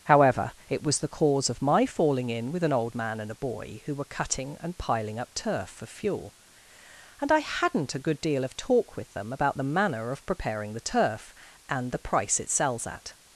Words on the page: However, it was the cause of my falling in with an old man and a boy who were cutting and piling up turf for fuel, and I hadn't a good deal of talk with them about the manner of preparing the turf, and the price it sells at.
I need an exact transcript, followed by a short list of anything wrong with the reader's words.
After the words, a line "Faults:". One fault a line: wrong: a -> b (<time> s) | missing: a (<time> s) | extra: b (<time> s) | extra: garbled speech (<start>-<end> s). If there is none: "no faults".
However, it was the cause of my falling in with an old man and a boy who were cutting and piling up turf for fuel, and I hadn't a good deal of talk with them about the manner of preparing the turf, and the price it sells at.
Faults:
no faults